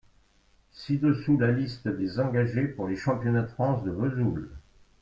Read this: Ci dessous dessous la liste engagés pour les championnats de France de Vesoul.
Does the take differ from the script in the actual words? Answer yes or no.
yes